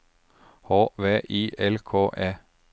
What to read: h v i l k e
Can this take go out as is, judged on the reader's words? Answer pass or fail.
pass